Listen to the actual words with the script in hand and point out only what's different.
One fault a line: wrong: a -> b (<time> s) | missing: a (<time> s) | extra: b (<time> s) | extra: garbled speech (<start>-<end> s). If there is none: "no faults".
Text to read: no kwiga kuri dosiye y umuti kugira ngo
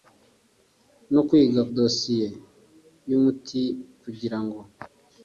missing: kuri (1.6 s)